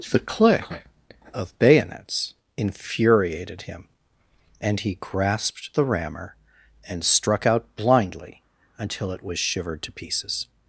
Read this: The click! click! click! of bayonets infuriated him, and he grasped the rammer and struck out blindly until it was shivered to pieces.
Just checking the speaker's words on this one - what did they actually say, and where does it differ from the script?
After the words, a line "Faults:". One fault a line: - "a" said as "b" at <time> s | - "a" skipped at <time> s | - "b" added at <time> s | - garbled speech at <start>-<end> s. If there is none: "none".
The click! of bayonets infuriated him, and he grasped the rammer and struck out blindly until it was shivered to pieces.
Faults:
- "click click" skipped at 0.7 s